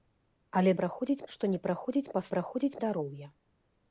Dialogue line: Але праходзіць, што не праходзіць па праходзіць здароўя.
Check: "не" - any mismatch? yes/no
no